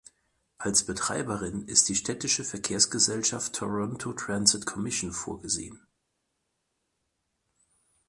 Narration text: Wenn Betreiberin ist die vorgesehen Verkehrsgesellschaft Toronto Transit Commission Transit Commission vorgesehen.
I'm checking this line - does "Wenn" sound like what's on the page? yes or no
no